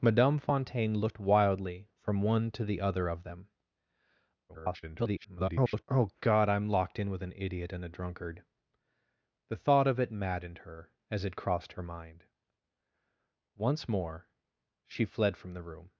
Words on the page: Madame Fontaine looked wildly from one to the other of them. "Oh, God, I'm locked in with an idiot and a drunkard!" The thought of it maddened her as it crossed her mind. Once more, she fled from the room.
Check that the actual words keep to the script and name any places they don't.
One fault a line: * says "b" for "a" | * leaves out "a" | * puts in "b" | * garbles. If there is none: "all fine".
* garbles